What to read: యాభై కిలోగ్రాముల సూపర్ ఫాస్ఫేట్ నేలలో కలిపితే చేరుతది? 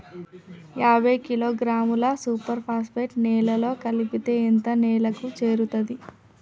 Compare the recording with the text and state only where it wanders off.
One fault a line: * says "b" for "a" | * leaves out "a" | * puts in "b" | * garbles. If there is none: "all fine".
* puts in "ఎంత నేలకు"